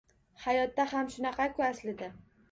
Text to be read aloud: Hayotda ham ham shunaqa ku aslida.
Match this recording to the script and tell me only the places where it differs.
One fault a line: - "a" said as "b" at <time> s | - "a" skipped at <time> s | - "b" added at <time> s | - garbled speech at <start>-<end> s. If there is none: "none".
- "ham" skipped at 1.1 s